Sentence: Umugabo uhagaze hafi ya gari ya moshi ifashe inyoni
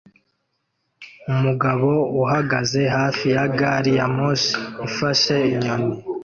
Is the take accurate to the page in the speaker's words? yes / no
yes